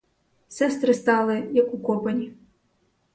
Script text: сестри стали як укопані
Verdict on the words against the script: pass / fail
pass